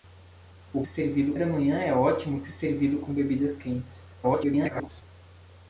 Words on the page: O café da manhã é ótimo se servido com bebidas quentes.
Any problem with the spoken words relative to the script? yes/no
yes